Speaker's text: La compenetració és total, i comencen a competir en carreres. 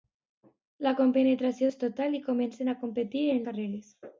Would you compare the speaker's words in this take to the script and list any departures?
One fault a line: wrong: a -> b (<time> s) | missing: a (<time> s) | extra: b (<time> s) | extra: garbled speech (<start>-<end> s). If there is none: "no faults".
no faults